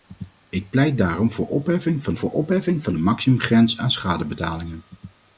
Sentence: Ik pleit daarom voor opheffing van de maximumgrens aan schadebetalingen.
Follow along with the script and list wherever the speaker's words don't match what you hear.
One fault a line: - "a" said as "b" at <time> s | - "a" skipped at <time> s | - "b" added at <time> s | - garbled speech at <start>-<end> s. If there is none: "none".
- "voor opheffing van" added at 2.2 s